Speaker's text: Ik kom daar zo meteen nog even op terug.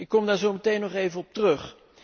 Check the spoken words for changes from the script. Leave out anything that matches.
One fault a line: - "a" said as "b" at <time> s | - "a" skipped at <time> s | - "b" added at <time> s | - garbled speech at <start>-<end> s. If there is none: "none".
none